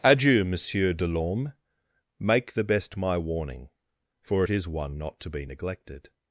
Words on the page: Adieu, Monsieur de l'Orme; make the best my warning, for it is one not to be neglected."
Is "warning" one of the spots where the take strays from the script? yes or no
no